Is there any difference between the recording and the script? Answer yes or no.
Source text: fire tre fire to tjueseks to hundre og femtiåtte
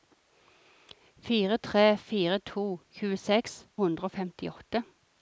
yes